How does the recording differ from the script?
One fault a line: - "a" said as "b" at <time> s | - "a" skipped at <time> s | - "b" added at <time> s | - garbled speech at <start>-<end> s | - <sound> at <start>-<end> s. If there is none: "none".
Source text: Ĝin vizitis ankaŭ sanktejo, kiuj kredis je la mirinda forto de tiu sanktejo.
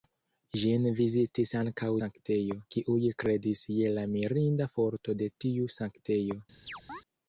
- chirp at 6.7-7.0 s